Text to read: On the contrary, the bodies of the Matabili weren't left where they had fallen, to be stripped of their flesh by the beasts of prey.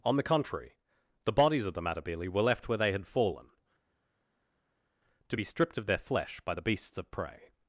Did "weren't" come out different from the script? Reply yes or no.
yes